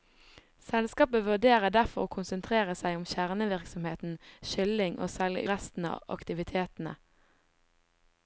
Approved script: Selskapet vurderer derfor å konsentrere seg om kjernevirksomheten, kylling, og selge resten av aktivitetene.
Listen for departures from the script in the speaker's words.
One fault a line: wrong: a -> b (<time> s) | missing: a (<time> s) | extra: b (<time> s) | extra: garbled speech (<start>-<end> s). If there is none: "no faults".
no faults